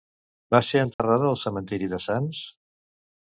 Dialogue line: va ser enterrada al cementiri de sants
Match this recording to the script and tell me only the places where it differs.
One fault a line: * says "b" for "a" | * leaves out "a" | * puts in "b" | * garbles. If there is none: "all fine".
all fine